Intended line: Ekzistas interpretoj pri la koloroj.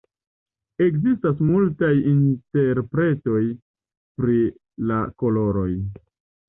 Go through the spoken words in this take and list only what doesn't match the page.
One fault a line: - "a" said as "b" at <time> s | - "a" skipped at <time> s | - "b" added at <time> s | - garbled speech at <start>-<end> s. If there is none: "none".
- "multaj" added at 1.5 s